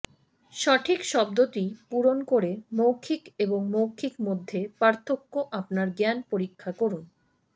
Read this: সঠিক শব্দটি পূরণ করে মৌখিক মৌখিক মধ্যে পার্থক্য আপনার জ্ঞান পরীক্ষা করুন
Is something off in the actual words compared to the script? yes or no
yes